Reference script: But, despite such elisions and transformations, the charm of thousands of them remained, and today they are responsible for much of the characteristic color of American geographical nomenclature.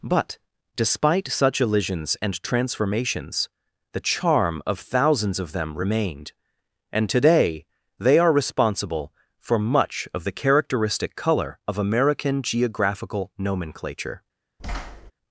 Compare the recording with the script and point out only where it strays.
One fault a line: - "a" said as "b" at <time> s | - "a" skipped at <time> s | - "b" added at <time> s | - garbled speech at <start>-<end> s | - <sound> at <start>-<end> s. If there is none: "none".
- thud at 14.6-15.1 s